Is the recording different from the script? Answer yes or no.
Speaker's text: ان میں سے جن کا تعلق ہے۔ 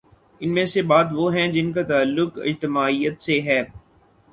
yes